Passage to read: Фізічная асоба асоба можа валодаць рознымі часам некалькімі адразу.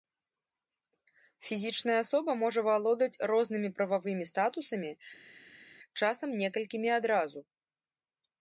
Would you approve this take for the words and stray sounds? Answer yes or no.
no